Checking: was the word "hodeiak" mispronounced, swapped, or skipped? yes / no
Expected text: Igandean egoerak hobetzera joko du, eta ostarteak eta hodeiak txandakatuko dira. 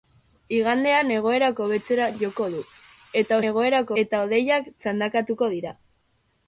no